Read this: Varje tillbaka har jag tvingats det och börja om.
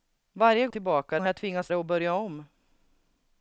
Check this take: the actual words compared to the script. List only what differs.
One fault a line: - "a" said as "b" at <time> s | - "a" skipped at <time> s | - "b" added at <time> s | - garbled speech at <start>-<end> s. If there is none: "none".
none